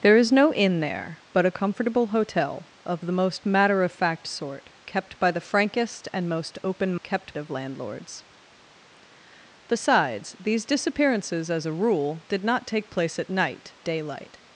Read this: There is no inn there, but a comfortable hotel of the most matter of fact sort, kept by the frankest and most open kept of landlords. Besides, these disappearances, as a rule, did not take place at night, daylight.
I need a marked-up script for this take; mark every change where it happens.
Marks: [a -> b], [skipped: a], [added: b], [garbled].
There is no inn there, but a comfortable hotel of the most matter of fact sort, kept by the frankest and most open kept of landlords. Besides, these disappearances, as a rule, did not take place at night, daylight.